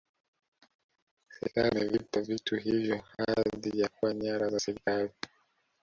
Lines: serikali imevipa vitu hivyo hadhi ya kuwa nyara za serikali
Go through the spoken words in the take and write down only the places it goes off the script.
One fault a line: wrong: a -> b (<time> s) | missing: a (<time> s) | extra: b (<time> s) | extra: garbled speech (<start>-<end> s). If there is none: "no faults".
no faults